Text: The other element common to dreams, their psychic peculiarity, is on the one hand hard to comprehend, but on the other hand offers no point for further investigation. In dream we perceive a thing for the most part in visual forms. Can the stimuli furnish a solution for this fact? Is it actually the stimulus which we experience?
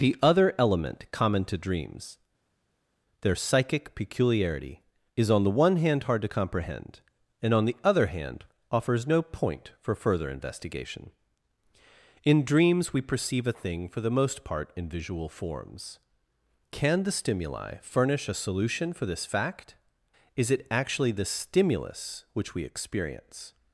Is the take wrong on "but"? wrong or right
wrong